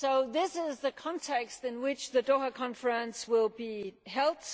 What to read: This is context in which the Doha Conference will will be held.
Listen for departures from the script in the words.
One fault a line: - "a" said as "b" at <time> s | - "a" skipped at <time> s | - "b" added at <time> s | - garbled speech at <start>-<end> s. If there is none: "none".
- "the" added at 0.8 s
- "will" skipped at 3.5 s